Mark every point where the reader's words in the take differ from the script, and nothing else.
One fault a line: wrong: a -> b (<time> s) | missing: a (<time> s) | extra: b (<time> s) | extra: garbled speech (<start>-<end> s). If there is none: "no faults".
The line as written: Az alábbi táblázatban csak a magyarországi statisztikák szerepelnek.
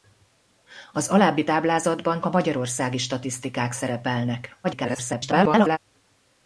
missing: csak (2.2 s)
extra: garbled speech (4.6-5.8 s)